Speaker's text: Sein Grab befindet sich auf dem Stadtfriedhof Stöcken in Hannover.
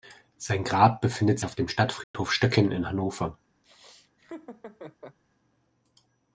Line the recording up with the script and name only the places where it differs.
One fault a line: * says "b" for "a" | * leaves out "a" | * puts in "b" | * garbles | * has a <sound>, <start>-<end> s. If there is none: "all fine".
* leaves out "sich"
* has a dropout, 2.0-2.1 s
* has a laugh, 3.6-5.2 s